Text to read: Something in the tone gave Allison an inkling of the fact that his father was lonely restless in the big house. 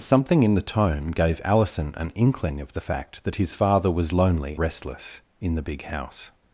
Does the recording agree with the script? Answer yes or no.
yes